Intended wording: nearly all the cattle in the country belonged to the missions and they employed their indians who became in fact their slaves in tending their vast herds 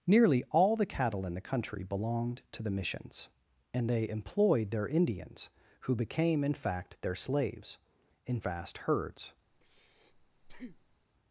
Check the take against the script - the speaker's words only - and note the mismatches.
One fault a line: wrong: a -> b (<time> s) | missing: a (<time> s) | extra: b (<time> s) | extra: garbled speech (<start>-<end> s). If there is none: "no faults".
missing: tending their (8.4 s)